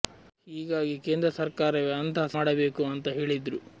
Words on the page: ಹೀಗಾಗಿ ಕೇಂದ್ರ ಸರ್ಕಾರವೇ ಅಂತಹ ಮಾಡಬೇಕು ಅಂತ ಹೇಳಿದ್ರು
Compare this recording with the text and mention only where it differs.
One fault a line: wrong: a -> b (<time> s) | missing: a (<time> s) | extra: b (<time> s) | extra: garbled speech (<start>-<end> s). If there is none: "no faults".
no faults